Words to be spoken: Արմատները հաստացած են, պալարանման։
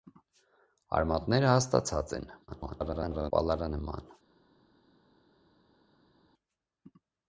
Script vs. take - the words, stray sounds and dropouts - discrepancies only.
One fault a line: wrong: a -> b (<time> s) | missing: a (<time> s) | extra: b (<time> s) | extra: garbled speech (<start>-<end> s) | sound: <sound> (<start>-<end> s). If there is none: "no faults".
extra: garbled speech (2.5-3.3 s)